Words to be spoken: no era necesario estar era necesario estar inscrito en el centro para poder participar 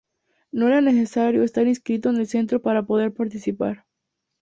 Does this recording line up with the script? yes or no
no